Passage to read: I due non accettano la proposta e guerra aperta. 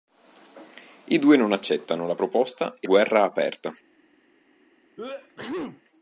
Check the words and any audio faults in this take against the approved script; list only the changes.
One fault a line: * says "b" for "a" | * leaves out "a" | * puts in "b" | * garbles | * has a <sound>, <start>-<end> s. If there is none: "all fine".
* has a sneeze, 5.0-5.8 s